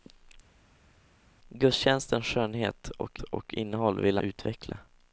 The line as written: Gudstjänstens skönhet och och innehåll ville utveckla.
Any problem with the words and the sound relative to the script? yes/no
no